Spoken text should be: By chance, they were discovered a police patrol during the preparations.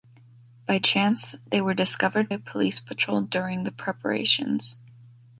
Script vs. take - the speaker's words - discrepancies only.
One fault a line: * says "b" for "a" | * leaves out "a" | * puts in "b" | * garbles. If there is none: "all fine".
all fine